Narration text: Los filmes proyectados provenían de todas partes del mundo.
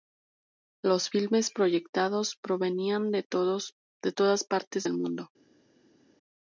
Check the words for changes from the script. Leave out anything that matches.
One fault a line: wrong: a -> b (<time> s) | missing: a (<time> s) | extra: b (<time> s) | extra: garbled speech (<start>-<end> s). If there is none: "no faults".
no faults